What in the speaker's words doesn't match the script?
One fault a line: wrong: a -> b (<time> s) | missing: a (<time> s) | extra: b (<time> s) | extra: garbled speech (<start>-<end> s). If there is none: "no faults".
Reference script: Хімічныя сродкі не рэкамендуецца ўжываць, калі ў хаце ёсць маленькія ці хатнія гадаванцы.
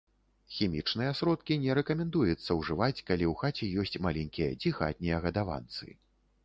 no faults